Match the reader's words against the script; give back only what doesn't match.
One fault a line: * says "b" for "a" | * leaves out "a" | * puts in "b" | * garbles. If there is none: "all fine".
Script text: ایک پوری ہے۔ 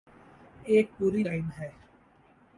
* puts in "لائن"